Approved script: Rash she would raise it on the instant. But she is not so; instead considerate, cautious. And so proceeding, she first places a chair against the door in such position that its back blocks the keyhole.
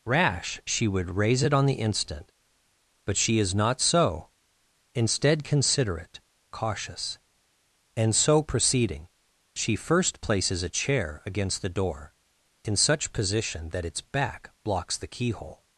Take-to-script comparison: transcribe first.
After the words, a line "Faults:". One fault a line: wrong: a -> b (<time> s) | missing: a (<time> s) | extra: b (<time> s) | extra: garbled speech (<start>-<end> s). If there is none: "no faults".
Rash she would raise it on the instant. But she is not so; instead considerate, cautious. And so proceeding, she first places a chair against the door in such position that its back blocks the keyhole.
Faults:
no faults